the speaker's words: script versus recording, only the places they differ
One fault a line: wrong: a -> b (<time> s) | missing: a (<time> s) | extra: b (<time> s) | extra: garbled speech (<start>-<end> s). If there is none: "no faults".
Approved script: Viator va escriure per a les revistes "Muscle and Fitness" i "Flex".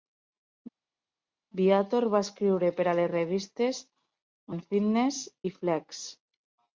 missing: Muscle (3.8 s)